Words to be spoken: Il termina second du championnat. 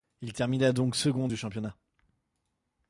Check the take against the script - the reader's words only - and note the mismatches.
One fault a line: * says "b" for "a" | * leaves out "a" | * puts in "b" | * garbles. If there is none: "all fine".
* puts in "donc"